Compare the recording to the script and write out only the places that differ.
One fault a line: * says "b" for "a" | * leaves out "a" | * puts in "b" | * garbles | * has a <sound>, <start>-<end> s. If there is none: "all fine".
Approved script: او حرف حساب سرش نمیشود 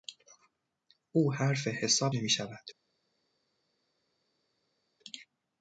* leaves out "سرش"